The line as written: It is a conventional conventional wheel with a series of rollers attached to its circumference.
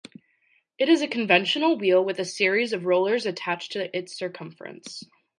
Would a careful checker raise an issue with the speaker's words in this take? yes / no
yes